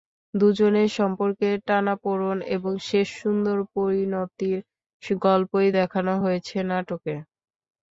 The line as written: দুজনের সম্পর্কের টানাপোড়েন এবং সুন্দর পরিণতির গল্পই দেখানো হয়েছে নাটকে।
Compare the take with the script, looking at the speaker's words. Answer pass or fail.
fail